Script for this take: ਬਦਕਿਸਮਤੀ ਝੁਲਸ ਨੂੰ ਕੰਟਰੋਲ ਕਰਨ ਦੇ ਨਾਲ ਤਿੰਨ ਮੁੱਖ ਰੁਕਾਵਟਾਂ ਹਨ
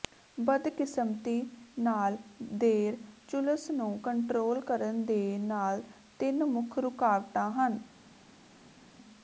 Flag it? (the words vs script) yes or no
yes